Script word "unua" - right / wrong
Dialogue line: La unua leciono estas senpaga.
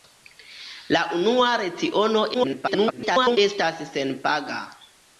right